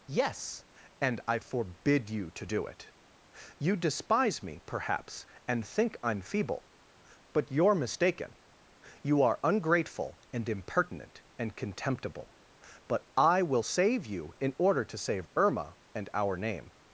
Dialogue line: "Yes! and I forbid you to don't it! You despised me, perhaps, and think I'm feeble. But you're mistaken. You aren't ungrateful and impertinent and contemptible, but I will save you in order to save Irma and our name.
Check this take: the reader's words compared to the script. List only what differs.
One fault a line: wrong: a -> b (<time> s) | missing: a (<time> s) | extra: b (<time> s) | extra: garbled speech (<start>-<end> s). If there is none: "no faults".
wrong: don't -> do (2.4 s)
wrong: despised -> despise (3.7 s)
wrong: aren't -> are (9.2 s)